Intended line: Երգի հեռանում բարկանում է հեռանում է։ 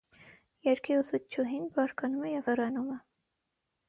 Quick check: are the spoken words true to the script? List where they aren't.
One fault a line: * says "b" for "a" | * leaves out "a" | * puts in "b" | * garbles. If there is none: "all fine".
* says "ուսուցչուհին" for "հեռանում"
* puts in "և"